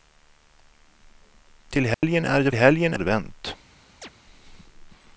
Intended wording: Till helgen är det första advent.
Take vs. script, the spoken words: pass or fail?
fail